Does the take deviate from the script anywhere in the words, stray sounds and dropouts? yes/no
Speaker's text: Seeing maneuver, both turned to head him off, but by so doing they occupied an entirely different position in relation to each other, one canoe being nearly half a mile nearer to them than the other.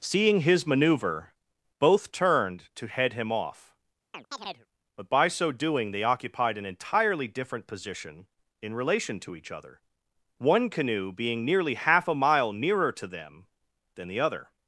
yes